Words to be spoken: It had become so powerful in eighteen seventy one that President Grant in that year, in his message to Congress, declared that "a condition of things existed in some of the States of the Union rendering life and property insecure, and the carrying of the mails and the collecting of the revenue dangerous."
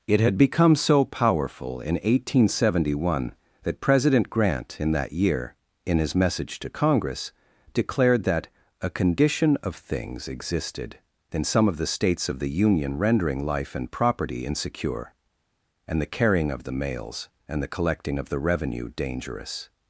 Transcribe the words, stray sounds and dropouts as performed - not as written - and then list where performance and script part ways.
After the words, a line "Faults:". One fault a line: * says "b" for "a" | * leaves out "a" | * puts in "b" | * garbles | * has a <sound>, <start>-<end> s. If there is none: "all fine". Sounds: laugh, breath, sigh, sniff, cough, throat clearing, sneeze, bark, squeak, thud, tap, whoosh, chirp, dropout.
It had become so powerful in eighteen seventy one that President Grant in that year, in his message to Congress, declared that "a condition of things existed in some of the States of the Union rendering life and property insecure, and the carrying of the mails and the collecting of the revenue dangerous."
Faults:
all fine